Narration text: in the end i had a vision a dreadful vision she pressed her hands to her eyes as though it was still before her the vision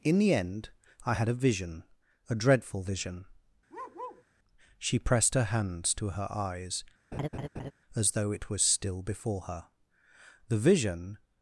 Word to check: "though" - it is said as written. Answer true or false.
true